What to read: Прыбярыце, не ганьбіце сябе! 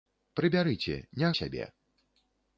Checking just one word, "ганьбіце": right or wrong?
wrong